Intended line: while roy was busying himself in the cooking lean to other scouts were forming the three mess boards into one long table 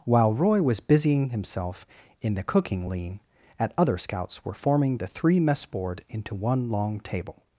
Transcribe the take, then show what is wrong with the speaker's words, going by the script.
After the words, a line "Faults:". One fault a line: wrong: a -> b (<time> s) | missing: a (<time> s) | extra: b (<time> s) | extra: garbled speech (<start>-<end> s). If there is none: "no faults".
while roy was busying himself in the cooking lean at other scouts were forming the three mess board into one long table
Faults:
wrong: to -> at (3.6 s)
wrong: boards -> board (5.7 s)